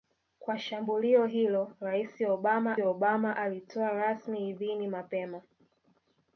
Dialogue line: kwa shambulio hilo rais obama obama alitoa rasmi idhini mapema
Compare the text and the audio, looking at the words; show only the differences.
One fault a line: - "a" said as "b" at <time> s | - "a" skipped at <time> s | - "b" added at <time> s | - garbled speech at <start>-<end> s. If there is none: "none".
none